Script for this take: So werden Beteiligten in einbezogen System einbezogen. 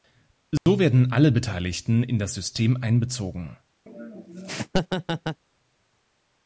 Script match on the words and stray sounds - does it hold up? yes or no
no